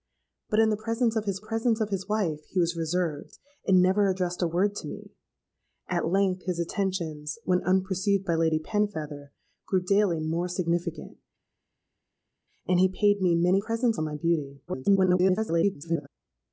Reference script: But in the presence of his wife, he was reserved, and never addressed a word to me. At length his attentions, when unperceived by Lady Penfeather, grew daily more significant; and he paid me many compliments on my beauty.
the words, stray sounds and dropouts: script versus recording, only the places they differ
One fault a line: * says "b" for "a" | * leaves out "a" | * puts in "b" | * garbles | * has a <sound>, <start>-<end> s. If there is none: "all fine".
* puts in "presence of his"
* says "presence" for "compliments"
* garbles